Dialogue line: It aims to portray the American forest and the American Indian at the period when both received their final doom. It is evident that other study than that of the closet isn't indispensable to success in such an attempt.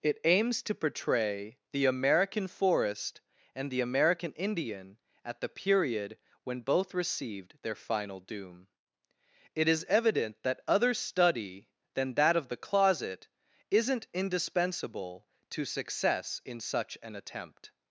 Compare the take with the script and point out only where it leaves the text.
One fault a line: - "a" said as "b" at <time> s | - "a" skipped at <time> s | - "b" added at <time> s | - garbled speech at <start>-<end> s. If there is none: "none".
none